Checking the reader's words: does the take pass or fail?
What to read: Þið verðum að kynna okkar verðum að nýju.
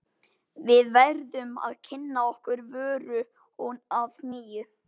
fail